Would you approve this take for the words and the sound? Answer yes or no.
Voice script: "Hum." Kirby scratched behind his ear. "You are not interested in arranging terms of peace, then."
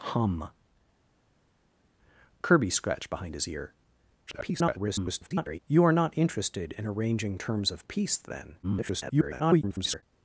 no